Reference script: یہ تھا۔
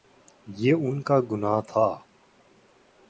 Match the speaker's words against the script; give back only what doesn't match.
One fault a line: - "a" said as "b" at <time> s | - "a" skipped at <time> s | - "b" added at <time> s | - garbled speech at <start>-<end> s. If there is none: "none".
- "ان کا گناہ" added at 0.7 s